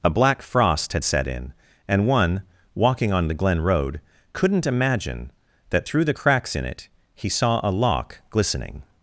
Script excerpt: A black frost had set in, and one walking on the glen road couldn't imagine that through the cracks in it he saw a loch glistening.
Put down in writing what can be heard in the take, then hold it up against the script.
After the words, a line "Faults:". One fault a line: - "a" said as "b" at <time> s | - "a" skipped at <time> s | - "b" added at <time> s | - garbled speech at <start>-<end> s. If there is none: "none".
A black frost had set in, and one walking on the glen road couldn't imagine that through the cracks in it he saw a loch glistening.
Faults:
none